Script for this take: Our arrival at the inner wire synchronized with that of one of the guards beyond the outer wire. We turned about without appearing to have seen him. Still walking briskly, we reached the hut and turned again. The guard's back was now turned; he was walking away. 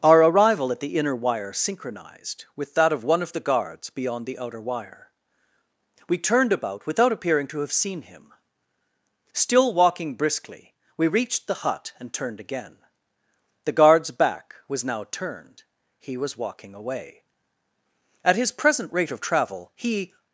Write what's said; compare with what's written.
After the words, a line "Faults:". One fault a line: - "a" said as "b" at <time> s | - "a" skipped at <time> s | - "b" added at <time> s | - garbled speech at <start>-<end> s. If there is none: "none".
Our arrival at the inner wire synchronized with that of one of the guards beyond the outer wire. We turned about without appearing to have seen him. Still walking briskly, we reached the hut and turned again. The guard's back was now turned; he was walking away. At his present rate of travel he
Faults:
- "At his present rate of travel he" added at 18.2 s